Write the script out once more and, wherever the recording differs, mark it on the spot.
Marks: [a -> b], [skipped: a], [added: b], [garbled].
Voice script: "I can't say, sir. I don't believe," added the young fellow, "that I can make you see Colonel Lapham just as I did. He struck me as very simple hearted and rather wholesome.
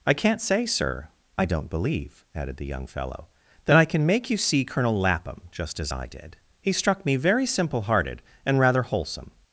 "I can't say, sir. I don't believe," added the young fellow, "that I can make you see Colonel Lapham just as I did. He struck me [skipped: as] very simple hearted and rather wholesome.